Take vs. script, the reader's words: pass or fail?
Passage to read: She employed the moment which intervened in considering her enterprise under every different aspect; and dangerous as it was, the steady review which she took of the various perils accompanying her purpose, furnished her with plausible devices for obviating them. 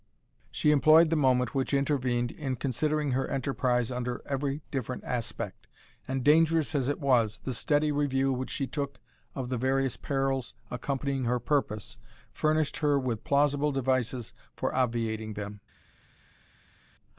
pass